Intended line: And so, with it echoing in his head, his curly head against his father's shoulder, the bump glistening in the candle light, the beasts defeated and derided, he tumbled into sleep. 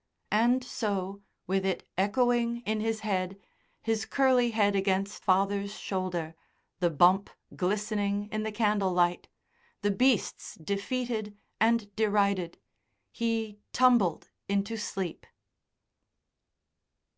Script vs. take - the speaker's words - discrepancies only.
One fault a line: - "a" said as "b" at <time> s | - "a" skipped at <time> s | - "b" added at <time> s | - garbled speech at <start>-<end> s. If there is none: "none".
- "his" skipped at 5.2 s